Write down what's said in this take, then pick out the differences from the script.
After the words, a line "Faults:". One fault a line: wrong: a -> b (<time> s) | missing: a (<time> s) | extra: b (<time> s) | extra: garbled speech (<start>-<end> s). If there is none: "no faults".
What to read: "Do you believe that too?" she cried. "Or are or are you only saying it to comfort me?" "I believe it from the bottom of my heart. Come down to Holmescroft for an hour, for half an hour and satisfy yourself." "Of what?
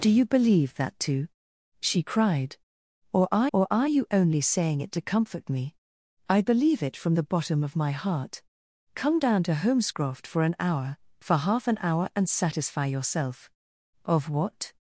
"Do you believe that too?" she cried. "Or are or are you only saying it to comfort me?" "I believe it from the bottom of my heart. Come down to Holmescroft for an hour, for half an hour and satisfy yourself." "Of what?
Faults:
no faults